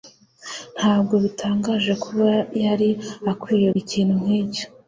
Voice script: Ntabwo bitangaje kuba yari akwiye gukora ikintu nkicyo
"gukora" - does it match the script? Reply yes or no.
no